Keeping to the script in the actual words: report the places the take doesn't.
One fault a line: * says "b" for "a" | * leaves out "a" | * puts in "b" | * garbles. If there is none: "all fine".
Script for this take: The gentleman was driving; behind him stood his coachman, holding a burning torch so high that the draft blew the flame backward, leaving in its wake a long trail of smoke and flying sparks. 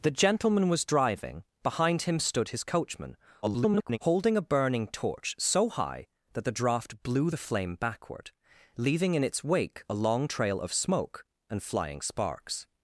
* garbles